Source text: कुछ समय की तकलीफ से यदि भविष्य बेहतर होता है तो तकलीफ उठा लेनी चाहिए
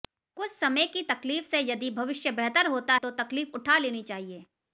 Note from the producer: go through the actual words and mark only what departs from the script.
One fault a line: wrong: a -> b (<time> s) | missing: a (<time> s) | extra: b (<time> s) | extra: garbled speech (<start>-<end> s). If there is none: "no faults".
missing: है (2.9 s)